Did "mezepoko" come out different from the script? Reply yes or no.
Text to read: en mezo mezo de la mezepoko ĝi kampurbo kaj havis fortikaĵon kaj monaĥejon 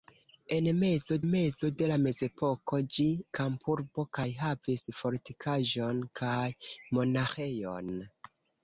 no